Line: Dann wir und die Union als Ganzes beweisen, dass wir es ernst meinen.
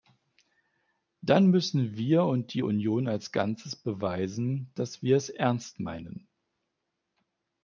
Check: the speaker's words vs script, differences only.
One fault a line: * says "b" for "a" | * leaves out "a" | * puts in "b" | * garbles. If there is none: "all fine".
* puts in "müssen"